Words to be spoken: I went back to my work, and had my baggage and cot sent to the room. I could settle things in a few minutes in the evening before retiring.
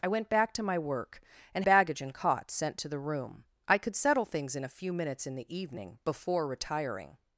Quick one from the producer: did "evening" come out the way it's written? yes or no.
yes